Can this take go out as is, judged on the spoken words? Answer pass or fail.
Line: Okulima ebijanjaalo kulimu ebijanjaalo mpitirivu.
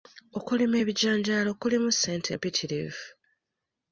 fail